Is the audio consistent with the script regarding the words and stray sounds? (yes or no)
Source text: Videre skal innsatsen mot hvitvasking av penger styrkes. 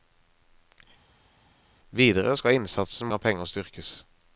no